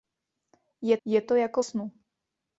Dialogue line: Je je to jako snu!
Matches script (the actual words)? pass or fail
pass